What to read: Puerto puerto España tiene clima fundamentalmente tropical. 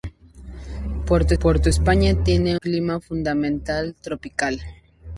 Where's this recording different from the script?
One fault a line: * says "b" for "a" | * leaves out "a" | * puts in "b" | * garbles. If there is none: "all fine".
all fine